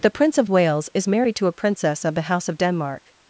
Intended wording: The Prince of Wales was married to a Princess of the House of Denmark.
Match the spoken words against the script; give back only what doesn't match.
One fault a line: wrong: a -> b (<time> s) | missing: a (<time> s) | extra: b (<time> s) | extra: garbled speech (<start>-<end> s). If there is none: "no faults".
wrong: was -> is (0.9 s)